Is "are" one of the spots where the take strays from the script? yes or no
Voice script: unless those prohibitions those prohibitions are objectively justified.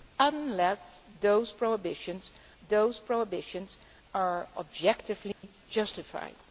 no